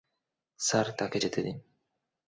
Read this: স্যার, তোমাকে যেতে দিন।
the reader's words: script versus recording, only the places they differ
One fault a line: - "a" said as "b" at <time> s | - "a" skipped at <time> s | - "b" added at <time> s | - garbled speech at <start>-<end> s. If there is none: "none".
- "তোমাকে" said as "তাকে" at 1.0 s